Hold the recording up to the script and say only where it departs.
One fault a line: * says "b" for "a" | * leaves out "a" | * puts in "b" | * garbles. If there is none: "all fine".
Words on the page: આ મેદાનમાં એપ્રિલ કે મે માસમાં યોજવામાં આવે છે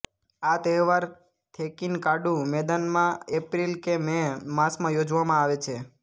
* puts in "તહેવાર થેકીનકાડુ"